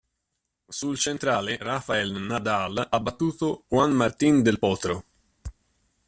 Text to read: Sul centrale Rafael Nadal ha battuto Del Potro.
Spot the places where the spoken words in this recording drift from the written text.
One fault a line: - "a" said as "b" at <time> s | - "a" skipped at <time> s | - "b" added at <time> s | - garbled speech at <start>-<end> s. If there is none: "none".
- "Juan Martín" added at 3.7 s